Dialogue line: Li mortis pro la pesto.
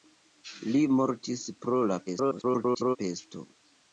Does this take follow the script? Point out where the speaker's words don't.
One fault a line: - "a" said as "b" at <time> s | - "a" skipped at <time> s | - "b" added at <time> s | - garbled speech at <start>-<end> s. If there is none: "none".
- garbled speech at 2.1-3.0 s